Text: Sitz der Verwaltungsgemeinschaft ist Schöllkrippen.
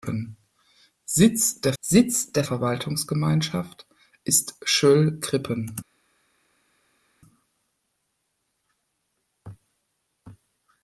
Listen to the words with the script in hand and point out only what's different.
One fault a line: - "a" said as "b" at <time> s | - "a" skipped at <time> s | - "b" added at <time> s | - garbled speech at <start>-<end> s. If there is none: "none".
- "sitz der" added at 1.8 s